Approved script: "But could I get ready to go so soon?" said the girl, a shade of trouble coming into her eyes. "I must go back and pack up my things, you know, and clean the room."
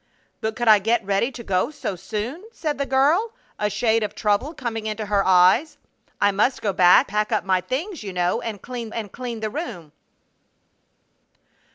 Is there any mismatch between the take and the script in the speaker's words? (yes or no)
yes